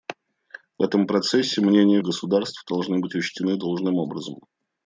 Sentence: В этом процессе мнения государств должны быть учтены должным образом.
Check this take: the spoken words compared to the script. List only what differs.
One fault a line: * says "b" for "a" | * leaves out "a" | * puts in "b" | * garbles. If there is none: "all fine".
all fine